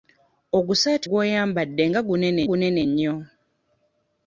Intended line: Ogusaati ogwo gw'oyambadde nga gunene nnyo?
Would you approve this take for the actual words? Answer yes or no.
no